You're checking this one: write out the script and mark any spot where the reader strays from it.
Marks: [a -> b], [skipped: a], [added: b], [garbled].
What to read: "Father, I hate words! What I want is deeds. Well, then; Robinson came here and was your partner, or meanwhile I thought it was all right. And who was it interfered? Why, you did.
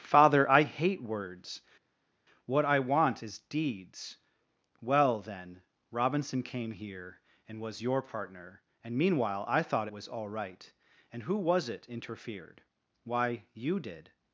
"Father, I hate words! What I want is deeds. Well, then; Robinson came here and was your partner, [or -> and] meanwhile I thought it was all right. And who was it interfered? Why, you did.